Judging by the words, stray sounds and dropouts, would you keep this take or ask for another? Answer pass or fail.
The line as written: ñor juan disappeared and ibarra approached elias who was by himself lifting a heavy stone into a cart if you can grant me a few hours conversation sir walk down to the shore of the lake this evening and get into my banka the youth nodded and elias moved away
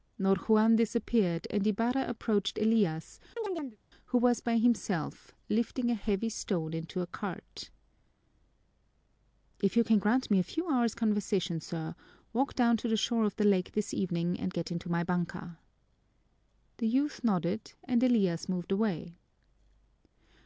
fail